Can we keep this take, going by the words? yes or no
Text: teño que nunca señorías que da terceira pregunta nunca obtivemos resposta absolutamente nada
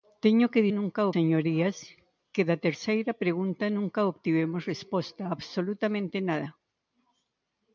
yes